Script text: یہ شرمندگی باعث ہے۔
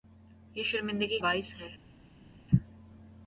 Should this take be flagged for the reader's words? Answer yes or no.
no